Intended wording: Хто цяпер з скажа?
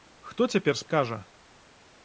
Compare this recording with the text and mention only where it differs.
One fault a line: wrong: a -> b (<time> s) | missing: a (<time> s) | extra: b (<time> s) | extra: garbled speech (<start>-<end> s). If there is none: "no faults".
no faults